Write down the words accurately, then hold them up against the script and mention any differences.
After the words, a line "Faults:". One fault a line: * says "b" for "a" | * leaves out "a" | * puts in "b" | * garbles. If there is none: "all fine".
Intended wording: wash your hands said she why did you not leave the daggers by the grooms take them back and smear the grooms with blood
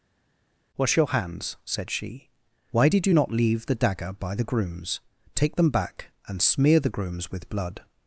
wash your hands said she why did you not leave the dagger by the grooms take them back and smear the grooms with blood
Faults:
* says "dagger" for "daggers"